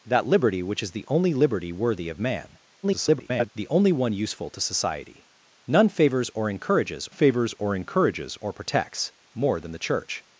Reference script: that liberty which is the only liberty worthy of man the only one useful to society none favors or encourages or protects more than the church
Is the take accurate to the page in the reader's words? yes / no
no